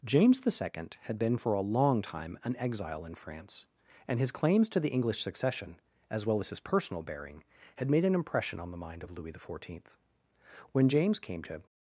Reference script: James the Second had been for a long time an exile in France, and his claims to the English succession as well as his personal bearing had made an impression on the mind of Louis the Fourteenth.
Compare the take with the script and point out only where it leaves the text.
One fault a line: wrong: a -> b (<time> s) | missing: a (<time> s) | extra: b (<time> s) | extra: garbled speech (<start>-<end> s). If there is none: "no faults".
extra: When James came to (10.7 s)